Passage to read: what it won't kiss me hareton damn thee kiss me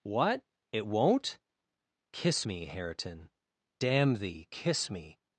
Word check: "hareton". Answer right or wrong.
right